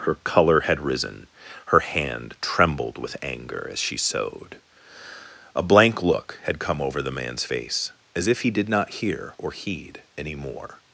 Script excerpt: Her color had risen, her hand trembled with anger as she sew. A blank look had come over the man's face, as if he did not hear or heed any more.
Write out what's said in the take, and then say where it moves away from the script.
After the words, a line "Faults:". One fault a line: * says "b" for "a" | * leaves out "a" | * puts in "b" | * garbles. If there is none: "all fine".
Her color had risen, her hand trembled with anger as she sewed. A blank look had come over the man's face, as if he did not hear or heed any more.
Faults:
* says "sewed" for "sew"